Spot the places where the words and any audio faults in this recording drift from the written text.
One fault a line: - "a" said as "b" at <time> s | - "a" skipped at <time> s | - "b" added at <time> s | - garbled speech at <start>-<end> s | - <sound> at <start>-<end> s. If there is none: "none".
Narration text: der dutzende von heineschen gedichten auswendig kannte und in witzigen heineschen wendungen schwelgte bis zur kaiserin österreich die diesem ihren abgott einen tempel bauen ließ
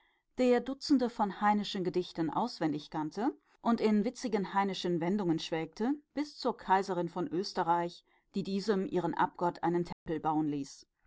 - "von" added at 7.1 s
- dropout at 9.9-10.1 s